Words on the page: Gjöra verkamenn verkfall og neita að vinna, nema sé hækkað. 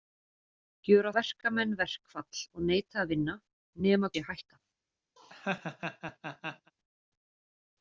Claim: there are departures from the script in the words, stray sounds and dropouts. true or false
true